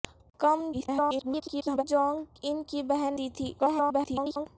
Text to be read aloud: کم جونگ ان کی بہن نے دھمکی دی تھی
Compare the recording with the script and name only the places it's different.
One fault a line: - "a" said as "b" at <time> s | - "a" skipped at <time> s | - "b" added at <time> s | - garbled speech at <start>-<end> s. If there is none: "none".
- garbled speech at 0.7-1.8 s
- "نے دھمکی" skipped at 3.2 s
- garbled speech at 3.6-4.5 s